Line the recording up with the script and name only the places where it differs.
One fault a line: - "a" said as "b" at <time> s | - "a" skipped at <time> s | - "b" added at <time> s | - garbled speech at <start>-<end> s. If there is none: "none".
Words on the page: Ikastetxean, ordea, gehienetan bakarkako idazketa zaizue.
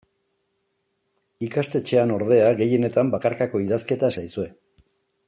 none